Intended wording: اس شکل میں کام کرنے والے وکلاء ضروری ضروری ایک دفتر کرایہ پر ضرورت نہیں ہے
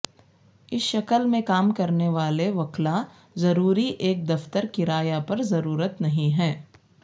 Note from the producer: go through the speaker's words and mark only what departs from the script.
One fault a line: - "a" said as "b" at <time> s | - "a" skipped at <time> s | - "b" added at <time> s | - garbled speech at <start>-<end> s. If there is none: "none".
- "ضروری" skipped at 3.9 s